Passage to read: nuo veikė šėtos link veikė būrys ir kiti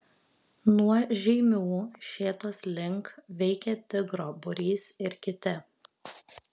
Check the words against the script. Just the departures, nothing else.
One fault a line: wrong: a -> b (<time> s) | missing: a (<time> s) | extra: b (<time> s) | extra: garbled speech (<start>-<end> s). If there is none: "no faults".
wrong: veikė -> žeimių (1.2 s)
extra: tigro (4.0 s)